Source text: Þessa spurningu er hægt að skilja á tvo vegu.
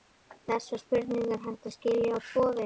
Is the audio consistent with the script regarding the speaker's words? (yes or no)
yes